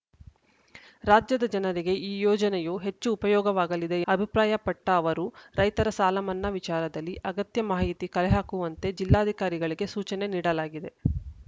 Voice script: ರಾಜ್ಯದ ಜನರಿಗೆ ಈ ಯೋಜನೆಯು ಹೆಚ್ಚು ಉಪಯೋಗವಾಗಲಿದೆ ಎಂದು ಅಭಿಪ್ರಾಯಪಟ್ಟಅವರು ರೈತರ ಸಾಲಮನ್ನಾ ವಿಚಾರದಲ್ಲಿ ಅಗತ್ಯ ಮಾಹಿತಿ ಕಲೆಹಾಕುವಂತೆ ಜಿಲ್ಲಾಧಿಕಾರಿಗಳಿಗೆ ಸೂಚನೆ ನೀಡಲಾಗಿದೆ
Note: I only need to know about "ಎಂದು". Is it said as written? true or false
false